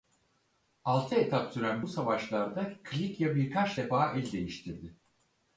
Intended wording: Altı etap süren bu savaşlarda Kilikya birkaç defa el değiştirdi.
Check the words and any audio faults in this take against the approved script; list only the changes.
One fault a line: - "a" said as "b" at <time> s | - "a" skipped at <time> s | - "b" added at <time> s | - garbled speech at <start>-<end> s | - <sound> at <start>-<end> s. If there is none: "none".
none